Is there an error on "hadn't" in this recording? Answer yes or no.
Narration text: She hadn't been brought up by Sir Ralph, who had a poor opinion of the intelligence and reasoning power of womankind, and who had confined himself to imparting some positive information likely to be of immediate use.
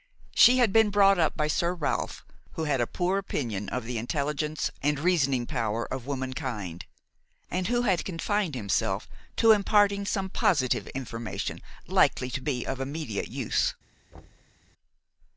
yes